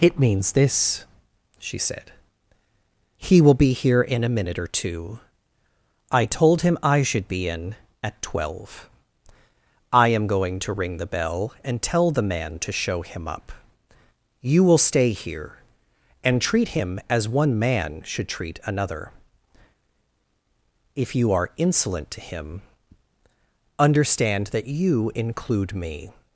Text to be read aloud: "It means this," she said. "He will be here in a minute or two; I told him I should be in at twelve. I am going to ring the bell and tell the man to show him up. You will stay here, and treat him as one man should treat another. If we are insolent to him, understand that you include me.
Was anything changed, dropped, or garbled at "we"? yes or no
yes